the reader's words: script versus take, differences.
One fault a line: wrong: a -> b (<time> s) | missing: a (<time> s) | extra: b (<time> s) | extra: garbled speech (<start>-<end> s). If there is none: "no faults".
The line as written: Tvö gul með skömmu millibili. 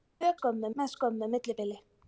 wrong: gul -> skömmu (0.4 s)